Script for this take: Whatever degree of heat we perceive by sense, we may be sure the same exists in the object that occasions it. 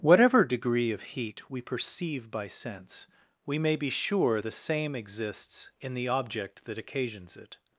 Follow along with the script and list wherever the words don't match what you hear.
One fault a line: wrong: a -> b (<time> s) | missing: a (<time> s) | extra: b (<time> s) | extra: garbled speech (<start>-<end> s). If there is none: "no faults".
no faults